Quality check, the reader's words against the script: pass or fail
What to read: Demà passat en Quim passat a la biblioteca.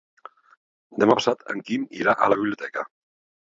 fail